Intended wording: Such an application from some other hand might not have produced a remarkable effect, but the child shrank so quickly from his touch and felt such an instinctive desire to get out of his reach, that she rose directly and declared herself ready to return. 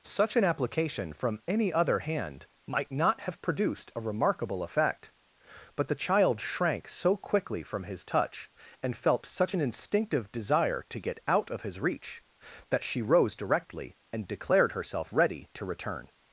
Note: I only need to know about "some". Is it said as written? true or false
false